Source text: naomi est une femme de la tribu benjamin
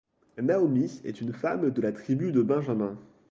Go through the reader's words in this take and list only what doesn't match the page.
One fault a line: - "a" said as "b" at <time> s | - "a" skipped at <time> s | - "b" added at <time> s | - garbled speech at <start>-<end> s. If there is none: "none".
- "de" added at 2.3 s